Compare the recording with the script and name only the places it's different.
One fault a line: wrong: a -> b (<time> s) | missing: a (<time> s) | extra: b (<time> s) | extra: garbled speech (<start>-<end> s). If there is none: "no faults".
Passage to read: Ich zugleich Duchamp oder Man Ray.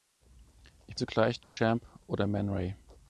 no faults